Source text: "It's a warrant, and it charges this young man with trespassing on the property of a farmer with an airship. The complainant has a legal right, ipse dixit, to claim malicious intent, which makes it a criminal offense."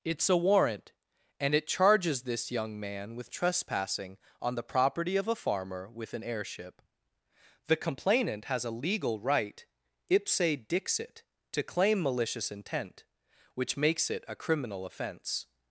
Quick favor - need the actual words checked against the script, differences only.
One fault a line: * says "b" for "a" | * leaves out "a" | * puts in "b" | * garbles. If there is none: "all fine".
all fine